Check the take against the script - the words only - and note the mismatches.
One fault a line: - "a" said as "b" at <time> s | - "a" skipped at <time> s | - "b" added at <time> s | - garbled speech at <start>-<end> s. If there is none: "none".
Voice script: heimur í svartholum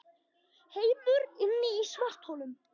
- "inni" added at 1.5 s